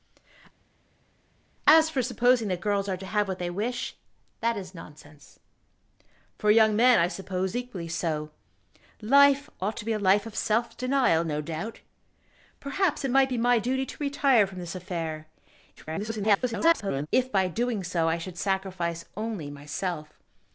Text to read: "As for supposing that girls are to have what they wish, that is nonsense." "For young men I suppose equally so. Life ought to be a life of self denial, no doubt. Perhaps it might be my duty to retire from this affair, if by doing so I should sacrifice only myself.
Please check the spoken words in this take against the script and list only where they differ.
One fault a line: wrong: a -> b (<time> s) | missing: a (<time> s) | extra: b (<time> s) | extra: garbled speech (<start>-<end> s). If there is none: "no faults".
extra: garbled speech (15.8-17.1 s)